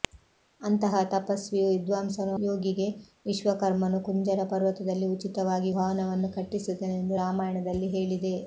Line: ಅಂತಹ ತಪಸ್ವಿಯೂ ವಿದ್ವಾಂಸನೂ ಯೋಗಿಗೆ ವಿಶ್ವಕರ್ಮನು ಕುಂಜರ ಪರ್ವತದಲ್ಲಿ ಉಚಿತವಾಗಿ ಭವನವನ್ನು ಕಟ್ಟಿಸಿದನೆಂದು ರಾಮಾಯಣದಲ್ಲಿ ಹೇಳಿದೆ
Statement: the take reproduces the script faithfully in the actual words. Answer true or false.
true